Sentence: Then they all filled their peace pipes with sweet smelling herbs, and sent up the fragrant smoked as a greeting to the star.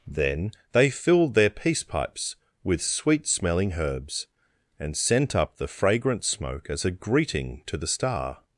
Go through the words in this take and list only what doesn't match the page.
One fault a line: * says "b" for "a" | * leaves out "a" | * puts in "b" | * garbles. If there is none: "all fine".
* leaves out "all"
* says "smoke" for "smoked"